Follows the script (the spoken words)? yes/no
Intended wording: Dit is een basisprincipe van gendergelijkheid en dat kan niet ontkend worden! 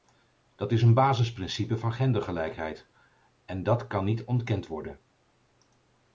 no